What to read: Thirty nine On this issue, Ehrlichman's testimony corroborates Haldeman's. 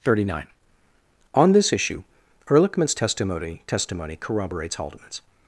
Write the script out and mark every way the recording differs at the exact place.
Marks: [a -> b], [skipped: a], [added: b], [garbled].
Thirty nine On this issue, Ehrlichman's testimony [added: testimony] corroborates Haldeman's.